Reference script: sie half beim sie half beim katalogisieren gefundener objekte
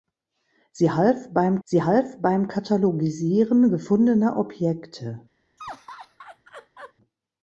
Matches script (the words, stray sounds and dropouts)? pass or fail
fail